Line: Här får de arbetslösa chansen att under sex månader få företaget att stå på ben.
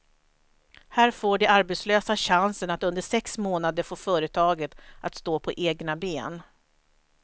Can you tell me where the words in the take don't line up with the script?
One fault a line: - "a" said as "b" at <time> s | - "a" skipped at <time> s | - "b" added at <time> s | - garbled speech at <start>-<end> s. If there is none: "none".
- "egna" added at 5.5 s